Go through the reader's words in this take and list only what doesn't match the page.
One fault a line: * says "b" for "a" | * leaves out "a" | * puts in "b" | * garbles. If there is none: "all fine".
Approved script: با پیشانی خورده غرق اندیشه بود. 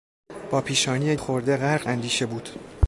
all fine